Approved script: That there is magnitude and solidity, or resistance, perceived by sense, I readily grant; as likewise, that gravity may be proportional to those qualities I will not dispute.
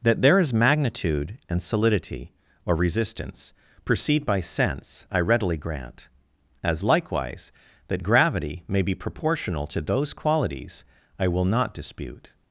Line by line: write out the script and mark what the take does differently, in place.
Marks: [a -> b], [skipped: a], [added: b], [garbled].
That there is magnitude and solidity, or resistance, perceived by sense, I readily grant; as likewise, that gravity may be proportional to those qualities I will not dispute.